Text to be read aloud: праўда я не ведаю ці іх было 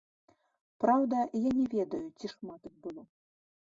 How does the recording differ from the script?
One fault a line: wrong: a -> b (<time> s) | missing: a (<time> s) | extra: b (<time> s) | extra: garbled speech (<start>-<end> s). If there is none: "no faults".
extra: шмат (2.4 s)